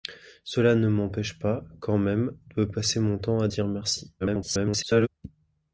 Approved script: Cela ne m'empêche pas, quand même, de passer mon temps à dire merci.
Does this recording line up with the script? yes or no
no